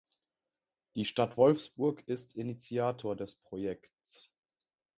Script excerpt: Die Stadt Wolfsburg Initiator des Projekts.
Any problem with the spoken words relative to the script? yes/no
yes